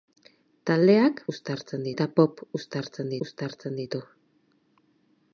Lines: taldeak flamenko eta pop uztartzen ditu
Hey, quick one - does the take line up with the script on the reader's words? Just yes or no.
no